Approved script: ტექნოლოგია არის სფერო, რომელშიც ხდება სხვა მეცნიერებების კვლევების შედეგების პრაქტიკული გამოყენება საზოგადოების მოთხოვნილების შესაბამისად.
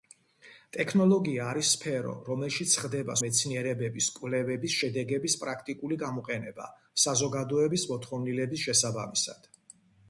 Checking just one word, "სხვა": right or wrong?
wrong